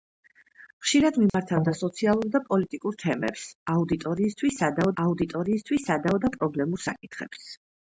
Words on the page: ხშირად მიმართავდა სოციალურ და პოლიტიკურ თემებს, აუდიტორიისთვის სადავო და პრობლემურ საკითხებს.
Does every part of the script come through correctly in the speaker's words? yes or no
no